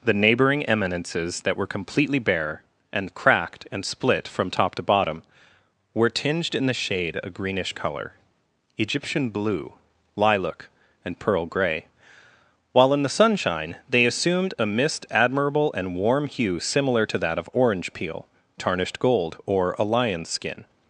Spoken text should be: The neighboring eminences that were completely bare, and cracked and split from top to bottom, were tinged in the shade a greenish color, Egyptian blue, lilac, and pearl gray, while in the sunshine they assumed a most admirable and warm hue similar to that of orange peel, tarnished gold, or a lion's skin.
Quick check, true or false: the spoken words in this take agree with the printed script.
false